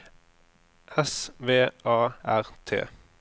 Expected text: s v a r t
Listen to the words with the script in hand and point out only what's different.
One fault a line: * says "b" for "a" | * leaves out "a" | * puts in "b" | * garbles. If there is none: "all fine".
all fine